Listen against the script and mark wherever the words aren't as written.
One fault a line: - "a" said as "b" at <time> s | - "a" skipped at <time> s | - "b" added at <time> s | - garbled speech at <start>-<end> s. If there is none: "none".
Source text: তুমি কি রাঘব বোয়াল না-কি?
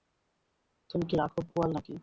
none